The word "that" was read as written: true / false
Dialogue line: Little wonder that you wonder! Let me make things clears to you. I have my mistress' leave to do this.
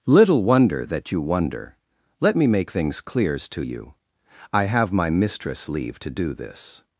true